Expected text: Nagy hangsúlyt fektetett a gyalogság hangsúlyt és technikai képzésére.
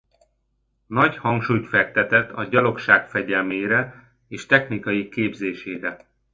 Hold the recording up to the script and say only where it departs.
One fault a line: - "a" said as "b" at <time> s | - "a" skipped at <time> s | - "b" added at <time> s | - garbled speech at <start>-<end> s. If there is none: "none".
- "hangsúlyt" said as "fegyelmére" at 3.1 s